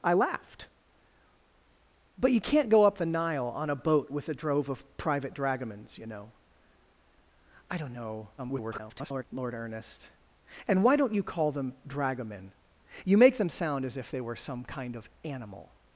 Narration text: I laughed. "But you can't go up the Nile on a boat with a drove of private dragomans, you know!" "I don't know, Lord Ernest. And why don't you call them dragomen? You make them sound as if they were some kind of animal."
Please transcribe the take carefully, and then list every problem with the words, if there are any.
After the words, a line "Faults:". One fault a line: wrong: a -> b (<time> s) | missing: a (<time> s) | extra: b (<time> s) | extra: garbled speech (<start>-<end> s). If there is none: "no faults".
I laughed. "But you can't go up the Nile on a boat with a drove of private dragomans, you know!" "I don't know, [garbled] Lord Ernest. And why don't you call them dragomen? You make them sound as if they were some kind of animal."
Faults:
extra: garbled speech (8.4-9.2 s)